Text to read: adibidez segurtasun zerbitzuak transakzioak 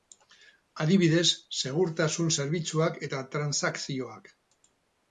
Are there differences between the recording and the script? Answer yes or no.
yes